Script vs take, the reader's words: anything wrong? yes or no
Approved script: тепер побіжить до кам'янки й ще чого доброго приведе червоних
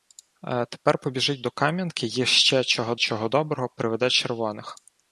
yes